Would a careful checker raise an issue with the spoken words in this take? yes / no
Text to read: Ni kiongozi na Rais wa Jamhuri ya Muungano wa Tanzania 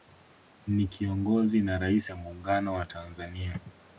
yes